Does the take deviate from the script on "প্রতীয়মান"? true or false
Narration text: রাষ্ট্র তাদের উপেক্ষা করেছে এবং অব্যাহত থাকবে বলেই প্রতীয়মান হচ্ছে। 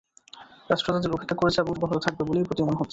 false